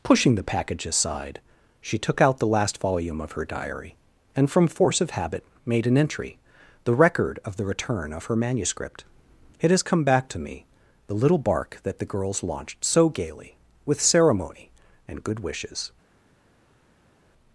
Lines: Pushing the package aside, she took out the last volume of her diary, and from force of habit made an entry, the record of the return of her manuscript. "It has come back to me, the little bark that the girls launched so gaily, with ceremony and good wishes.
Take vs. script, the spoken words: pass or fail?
pass